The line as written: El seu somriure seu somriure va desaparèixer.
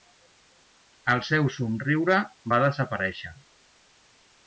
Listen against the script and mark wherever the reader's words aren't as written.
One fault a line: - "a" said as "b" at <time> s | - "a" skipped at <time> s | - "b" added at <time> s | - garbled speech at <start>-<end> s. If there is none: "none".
- "seu somriure" skipped at 2.2 s